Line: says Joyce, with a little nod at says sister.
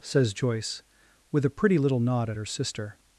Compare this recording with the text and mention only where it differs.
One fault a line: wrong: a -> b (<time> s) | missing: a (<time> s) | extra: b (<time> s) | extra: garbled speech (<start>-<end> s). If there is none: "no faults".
extra: pretty (1.5 s)
wrong: says -> her (2.4 s)